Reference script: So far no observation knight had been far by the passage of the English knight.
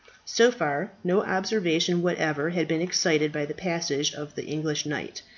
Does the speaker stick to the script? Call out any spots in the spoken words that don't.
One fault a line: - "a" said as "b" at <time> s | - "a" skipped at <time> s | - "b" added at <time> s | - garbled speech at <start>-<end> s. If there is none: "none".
- "knight" said as "whatever" at 2.0 s
- "far" said as "excited" at 2.8 s